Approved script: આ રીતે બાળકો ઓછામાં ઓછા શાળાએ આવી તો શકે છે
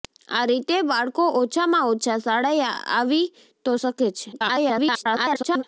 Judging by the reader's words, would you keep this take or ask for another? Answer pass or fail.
fail